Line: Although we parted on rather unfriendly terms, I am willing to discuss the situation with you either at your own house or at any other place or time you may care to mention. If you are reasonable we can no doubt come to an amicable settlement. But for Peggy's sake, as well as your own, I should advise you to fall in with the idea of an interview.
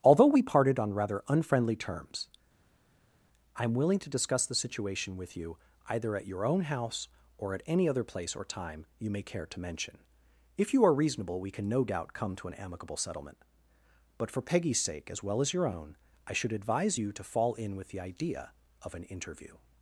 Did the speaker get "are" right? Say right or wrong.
right